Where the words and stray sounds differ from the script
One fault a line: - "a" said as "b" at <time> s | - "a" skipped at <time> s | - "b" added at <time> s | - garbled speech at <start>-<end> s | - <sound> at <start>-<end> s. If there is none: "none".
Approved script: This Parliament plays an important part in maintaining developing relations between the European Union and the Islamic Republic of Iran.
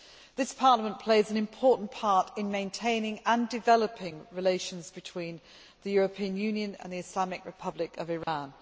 - "and" added at 3.2 s
- dropout at 8.2-8.3 s